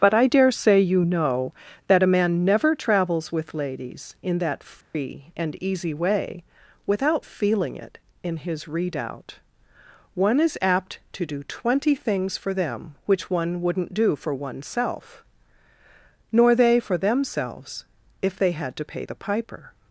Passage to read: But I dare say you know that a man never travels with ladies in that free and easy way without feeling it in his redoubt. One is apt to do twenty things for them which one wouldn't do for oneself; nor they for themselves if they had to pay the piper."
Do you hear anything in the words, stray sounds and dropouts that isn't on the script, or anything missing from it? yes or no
yes